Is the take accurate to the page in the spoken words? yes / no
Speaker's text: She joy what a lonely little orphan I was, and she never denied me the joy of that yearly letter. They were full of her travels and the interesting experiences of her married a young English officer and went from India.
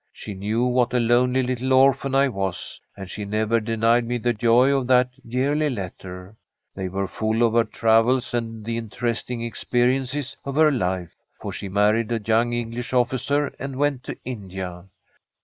no